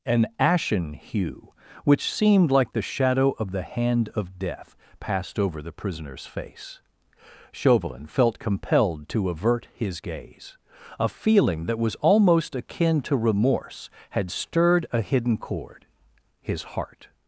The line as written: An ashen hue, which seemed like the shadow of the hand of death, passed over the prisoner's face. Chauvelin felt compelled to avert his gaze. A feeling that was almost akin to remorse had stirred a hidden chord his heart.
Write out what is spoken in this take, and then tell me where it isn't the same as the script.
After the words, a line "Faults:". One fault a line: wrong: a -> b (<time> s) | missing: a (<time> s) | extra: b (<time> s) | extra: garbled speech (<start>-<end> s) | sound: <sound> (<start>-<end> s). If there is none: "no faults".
An ashen hue, which seemed like the shadow of the hand of death, passed over the prisoner's face. Chauvelin felt compelled to avert his gaze. A feeling that was almost akin to remorse had stirred a hidden chord his heart.
Faults:
no faults